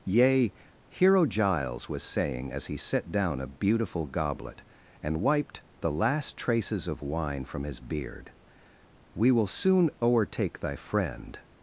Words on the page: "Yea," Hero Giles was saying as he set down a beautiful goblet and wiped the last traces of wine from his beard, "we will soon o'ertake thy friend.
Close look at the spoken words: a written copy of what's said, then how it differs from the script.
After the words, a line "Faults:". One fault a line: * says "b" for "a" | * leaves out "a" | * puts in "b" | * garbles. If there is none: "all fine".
"Yea," Hero Giles was saying as he set down a beautiful goblet and wiped the last traces of wine from his beard, "we will soon o'ertake thy friend.
Faults:
all fine